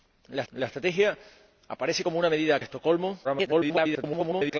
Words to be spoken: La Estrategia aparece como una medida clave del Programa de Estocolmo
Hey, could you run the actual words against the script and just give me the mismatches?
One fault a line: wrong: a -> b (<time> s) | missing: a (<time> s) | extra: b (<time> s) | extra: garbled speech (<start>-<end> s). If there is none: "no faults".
extra: la (0.5 s)
missing: clave del Programa (2.6 s)
extra: garbled speech (3.2-4.6 s)